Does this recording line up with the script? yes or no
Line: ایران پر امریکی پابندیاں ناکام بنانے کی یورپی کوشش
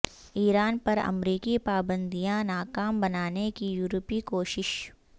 yes